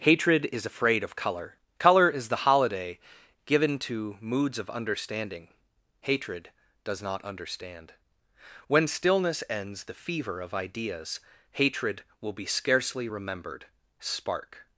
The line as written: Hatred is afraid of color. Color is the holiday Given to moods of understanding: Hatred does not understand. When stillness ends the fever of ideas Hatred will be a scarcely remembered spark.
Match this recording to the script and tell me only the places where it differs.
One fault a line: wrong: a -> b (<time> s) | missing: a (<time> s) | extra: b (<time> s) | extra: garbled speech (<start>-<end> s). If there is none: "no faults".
missing: a (12.5 s)